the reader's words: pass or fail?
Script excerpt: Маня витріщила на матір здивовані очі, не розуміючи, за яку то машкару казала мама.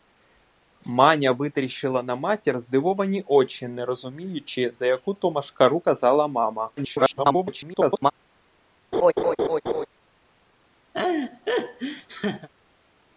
fail